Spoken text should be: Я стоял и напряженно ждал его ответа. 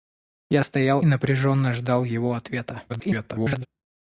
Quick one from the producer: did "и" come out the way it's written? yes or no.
no